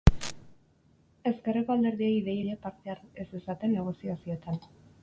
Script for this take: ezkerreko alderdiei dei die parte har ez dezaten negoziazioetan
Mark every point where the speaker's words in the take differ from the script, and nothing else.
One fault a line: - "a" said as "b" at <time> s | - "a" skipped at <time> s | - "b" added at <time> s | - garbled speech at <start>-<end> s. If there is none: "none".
none